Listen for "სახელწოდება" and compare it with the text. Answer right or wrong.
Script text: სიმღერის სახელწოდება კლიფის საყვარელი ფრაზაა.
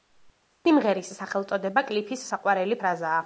right